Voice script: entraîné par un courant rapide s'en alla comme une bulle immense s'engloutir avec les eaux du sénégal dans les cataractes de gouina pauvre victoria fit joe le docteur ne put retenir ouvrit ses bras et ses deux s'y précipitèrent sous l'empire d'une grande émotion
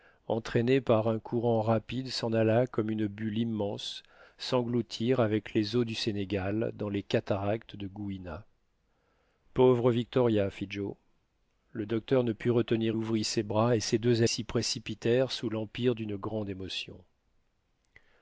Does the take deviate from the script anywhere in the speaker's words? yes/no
no